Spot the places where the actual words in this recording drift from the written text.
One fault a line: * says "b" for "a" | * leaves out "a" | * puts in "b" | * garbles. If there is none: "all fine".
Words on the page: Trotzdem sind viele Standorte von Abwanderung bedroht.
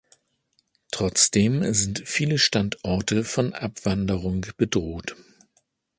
all fine